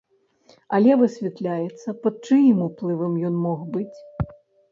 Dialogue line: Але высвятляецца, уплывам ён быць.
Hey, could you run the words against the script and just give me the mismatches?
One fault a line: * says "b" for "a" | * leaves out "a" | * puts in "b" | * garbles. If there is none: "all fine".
* puts in "пад чыім"
* puts in "мог"